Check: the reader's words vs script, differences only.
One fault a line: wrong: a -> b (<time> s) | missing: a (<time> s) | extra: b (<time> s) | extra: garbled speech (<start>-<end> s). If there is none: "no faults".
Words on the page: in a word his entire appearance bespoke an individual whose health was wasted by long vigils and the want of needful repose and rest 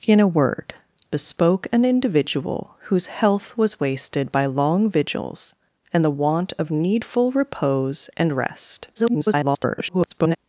missing: his entire appearance (0.7 s)
extra: garbled speech (8.9-10.4 s)